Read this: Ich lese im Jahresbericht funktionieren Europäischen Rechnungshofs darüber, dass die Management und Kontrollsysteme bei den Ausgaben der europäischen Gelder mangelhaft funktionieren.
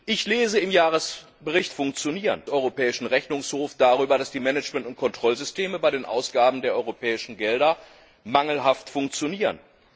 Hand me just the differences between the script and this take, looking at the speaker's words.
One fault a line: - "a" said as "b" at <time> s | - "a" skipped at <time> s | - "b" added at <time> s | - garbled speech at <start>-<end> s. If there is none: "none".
none